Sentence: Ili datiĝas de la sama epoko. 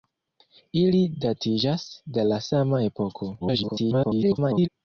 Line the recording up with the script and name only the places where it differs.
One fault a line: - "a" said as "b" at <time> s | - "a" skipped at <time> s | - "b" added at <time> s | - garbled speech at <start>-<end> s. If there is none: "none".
- garbled speech at 3.4-4.7 s